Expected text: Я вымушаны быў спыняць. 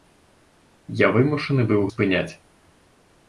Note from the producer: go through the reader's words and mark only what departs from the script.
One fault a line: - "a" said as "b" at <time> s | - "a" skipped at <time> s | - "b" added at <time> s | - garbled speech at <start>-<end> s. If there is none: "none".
none